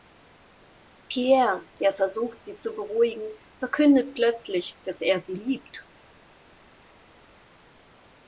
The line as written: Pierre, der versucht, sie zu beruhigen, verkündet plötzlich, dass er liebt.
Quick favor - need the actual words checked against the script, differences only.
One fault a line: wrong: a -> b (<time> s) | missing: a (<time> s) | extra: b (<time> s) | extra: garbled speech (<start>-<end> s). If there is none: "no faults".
extra: sie (5.2 s)